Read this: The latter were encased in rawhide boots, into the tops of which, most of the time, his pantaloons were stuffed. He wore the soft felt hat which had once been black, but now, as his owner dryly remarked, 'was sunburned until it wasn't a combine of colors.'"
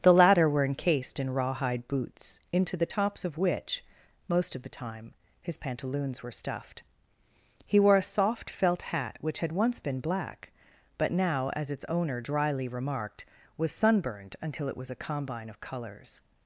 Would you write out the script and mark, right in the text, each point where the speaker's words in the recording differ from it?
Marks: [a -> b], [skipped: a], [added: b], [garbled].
The latter were encased in rawhide boots, into the tops of which, most of the time, his pantaloons were stuffed. He wore [the -> a] soft felt hat which had once been black, but now, as [his -> its] owner dryly remarked, 'was sunburned until it [wasn't -> was] a combine of colors.'"